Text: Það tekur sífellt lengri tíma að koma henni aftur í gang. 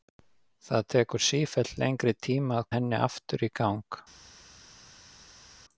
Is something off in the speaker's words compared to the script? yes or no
yes